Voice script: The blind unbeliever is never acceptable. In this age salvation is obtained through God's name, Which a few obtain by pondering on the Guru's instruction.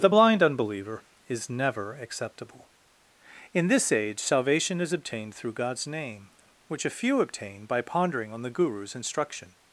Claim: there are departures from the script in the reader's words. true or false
false